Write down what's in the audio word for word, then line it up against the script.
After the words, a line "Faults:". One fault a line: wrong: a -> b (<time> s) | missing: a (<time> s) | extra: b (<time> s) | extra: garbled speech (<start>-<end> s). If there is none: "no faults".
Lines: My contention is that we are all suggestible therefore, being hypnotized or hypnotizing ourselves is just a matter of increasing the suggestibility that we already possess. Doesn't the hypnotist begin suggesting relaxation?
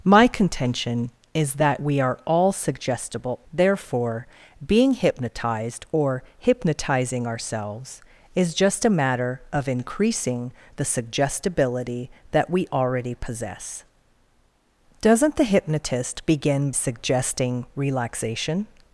My contention is that we are all suggestible therefore, being hypnotized or hypnotizing ourselves is just a matter of increasing the suggestibility that we already possess. Doesn't the hypnotist begin suggesting relaxation?
Faults:
no faults